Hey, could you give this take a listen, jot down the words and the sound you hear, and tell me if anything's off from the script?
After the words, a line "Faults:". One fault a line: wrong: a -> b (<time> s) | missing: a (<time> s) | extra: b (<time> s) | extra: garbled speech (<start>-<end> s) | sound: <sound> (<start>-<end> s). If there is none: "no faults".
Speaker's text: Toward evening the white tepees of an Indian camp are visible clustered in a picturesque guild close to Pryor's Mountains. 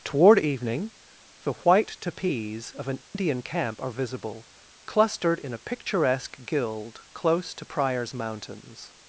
Toward evening the white tepees of an Indian camp are visible clustered in a picturesque guild close to Pryor's Mountains.
Faults:
sound: dropout (3.0-3.1 s)